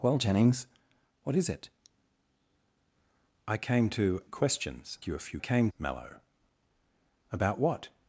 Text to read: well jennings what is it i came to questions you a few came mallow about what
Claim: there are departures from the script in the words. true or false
false